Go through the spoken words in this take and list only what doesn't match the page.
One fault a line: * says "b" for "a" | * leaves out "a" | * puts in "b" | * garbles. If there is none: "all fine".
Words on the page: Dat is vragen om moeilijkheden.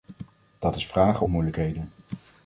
* leaves out "om"